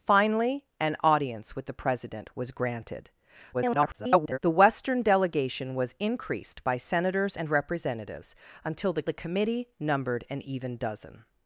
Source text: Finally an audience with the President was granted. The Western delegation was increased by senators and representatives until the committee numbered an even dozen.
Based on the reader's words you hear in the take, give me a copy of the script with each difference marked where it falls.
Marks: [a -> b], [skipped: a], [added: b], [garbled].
Finally an audience with the President was granted. [garbled] The Western delegation was increased by senators and representatives until the [added: the] committee numbered an even dozen.